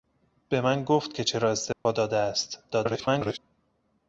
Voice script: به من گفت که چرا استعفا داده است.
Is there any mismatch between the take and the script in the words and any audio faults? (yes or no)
yes